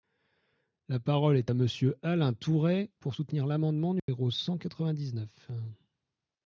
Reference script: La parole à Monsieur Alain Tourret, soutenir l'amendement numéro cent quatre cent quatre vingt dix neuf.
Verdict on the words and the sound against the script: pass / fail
fail